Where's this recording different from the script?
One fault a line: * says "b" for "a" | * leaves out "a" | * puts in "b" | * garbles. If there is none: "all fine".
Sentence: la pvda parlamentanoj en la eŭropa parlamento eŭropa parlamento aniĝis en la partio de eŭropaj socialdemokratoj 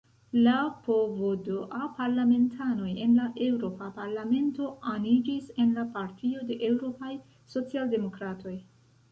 * leaves out "eŭropa parlamento"